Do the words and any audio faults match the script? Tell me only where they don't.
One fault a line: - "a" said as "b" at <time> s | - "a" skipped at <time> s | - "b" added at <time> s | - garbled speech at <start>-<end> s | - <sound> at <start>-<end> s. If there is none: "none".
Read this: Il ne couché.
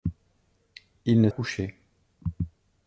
none